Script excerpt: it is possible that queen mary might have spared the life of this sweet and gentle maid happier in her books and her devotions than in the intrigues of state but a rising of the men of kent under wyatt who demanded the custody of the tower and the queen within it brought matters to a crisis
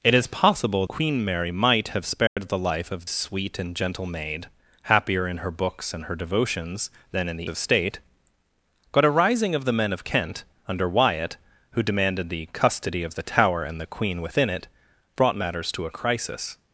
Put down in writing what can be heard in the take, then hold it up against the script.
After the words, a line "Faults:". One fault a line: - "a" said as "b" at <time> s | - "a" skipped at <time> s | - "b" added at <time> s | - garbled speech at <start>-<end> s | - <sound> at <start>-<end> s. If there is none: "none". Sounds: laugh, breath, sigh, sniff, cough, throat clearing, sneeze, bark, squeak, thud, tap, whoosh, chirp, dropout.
it is possible queen mary might have spared the life of sweet and gentle maid happier in her books and her devotions than in the of state but a rising of the men of kent under wyatt who demanded the custody of the tower and the queen within it brought matters to a crisis
Faults:
- "that" skipped at 0.9 s
- dropout at 2.3-2.4 s
- "this" skipped at 3.0 s
- "intrigues" skipped at 7.5 s